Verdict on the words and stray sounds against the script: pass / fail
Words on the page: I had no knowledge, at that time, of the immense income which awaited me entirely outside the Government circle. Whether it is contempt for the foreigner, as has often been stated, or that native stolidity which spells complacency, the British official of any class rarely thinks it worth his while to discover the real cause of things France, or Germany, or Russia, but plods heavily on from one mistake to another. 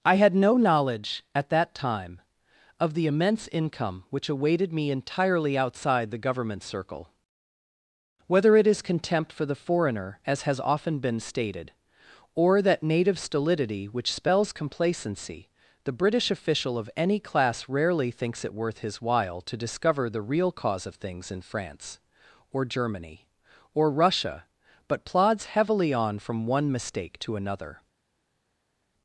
fail